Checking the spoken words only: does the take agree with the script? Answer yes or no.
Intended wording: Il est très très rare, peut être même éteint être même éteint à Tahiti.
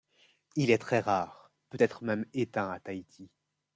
no